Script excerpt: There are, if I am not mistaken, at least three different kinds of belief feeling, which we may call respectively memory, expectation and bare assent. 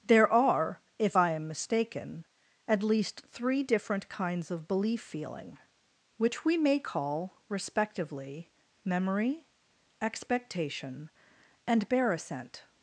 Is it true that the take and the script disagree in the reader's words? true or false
true